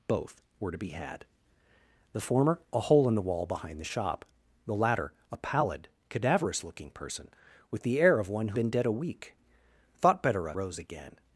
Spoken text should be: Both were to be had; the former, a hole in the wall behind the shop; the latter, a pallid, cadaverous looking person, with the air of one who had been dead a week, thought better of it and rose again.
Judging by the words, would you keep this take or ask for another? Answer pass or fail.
fail